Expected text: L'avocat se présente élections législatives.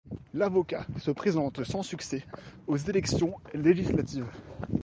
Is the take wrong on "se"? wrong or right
right